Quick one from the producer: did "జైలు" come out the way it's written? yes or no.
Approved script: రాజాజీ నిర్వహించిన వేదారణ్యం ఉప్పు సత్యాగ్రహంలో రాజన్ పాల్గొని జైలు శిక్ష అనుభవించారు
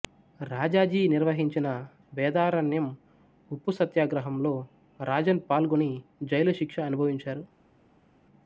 yes